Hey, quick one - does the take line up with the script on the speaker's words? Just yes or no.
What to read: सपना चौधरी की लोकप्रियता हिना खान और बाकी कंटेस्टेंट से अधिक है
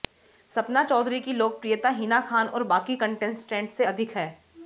yes